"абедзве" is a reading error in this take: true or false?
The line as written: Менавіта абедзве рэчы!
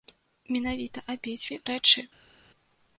false